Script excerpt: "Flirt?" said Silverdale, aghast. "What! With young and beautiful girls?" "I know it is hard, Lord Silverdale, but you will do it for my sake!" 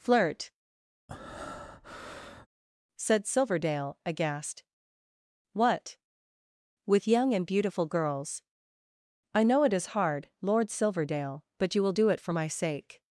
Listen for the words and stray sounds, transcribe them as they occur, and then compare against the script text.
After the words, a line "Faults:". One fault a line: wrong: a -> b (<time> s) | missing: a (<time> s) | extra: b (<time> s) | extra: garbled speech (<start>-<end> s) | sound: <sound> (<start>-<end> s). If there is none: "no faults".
"Flirt?" said Silverdale, aghast. "What! With young and beautiful girls?" "I know it is hard, Lord Silverdale, but you will do it for my sake!"
Faults:
sound: breath (1.1-2.5 s)